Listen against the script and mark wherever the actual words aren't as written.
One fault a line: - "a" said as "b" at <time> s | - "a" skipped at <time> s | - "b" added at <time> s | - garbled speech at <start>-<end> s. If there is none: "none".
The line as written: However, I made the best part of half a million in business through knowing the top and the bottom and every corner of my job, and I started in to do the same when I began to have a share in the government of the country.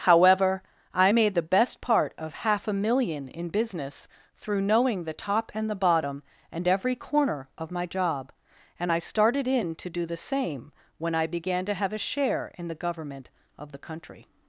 none